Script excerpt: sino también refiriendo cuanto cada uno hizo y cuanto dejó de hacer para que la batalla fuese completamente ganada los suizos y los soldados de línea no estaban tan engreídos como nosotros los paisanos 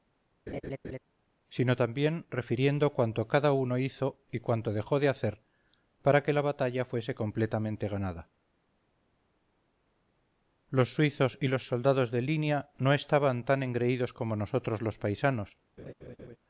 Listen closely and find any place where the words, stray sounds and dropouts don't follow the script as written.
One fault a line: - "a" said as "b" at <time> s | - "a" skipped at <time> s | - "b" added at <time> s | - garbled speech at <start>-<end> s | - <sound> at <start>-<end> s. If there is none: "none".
- laugh at 0.5-1.0 s
- laugh at 15.8-16.4 s